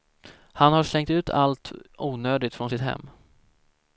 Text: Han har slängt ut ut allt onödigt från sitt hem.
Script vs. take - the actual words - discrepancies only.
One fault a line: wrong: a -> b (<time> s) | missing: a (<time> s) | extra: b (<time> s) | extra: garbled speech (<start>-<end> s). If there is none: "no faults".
missing: ut (1.3 s)